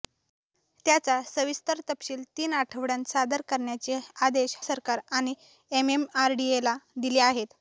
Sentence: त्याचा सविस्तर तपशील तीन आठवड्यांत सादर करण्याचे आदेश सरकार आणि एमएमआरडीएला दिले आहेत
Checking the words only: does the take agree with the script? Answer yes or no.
yes